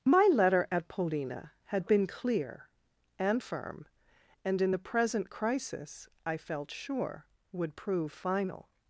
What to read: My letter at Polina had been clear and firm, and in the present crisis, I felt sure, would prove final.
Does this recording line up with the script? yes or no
yes